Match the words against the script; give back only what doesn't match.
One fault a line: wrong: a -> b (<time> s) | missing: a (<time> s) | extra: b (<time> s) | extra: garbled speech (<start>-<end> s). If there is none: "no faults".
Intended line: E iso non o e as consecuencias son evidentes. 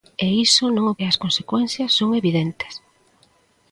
no faults